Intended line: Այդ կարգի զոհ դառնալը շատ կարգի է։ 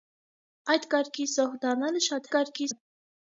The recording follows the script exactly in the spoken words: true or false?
true